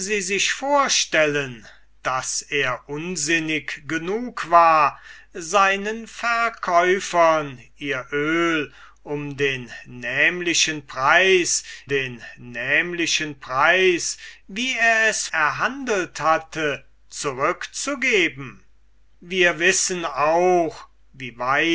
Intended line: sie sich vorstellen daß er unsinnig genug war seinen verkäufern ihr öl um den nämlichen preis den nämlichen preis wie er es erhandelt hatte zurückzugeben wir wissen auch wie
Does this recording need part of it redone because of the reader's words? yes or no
no